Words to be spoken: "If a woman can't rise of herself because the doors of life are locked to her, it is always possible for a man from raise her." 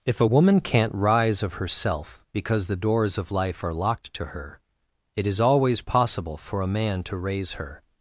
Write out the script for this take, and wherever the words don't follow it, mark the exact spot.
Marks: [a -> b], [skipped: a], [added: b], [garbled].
"If a woman can't rise of herself because the doors of life are locked to her, it is always possible for a man [from -> to] raise her."